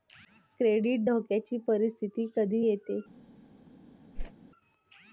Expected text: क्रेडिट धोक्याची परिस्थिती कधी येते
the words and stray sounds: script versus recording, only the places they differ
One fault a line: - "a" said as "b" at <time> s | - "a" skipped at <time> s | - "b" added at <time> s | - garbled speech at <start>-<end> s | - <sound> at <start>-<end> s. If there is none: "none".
- whoosh at 4.1-4.3 s